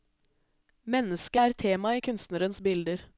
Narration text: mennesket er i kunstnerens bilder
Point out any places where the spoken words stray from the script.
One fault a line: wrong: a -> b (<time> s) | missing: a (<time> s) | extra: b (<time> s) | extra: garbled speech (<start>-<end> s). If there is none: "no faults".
extra: tema (1.6 s)